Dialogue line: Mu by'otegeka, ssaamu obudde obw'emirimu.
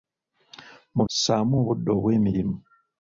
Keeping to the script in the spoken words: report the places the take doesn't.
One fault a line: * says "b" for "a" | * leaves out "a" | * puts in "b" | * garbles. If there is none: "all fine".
* leaves out "by'otegeka"